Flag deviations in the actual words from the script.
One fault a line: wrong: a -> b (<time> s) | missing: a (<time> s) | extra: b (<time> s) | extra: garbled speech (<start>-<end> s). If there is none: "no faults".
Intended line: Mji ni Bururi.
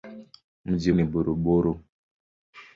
no faults